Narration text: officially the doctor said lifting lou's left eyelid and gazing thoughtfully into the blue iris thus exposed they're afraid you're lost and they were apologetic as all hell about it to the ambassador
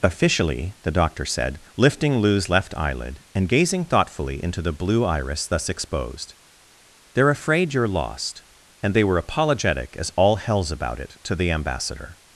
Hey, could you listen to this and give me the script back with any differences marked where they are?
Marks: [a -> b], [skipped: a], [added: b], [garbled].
officially the doctor said lifting lou's left eyelid and gazing thoughtfully into the blue iris thus exposed they're afraid you're lost and they were apologetic as all [hell -> hells] about it to the ambassador